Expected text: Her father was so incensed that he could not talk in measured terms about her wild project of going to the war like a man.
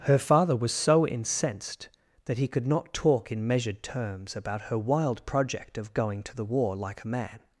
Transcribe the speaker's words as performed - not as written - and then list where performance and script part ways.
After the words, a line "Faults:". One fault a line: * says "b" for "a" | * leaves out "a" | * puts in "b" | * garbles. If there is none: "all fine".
Her father was so incensed that he could not talk in measured terms about her wild project of going to the war like a man.
Faults:
all fine